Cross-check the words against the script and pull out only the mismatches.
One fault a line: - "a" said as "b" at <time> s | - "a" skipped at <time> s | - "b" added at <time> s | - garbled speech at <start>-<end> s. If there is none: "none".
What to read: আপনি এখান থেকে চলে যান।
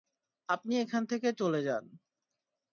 none